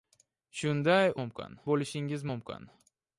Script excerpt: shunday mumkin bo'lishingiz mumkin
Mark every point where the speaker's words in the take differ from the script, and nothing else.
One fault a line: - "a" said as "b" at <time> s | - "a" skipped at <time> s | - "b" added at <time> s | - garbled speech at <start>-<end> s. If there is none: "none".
none